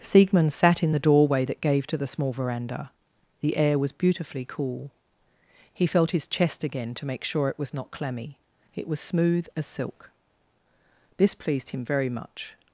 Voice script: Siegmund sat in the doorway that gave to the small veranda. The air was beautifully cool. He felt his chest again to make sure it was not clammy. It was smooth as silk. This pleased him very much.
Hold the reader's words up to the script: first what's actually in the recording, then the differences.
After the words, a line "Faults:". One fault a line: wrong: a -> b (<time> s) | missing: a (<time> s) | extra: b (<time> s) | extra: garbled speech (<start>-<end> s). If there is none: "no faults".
Siegmund sat in the doorway that gave to the small veranda. The air was beautifully cool. He felt his chest again to make sure it was not clammy. It was smooth as silk. This pleased him very much.
Faults:
no faults